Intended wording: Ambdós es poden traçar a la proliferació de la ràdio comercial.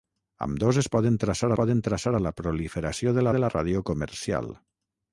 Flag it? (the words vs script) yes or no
yes